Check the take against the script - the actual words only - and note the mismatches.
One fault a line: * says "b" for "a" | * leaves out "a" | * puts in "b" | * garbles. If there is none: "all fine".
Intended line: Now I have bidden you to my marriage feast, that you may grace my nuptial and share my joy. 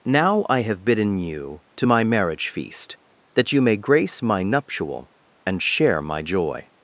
all fine